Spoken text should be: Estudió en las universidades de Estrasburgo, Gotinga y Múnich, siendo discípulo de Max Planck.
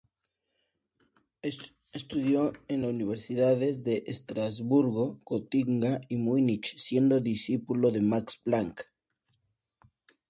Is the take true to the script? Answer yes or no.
yes